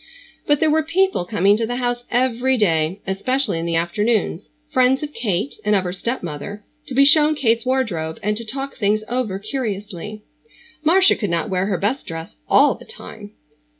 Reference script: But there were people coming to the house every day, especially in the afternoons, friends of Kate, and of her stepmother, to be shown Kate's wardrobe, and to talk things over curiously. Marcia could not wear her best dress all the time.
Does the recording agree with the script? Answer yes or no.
yes